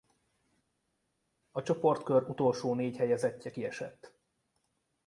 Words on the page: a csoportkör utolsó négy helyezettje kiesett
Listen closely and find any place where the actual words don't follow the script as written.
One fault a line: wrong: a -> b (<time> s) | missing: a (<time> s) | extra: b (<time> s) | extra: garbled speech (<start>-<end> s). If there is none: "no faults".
no faults